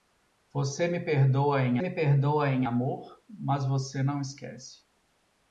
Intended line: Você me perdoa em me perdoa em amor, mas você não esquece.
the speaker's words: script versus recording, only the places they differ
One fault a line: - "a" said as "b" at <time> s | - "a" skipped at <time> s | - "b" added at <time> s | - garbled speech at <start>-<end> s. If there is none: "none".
none